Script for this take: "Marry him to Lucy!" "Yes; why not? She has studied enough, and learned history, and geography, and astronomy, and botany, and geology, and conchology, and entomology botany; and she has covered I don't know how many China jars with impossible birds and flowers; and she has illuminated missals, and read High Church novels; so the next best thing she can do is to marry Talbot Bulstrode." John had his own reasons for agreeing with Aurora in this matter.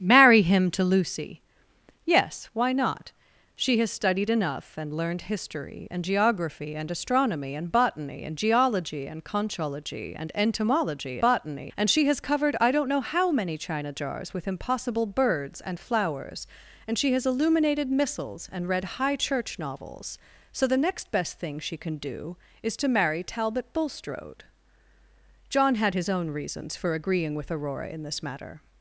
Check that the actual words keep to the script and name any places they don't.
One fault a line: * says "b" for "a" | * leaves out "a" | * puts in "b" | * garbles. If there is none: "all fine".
all fine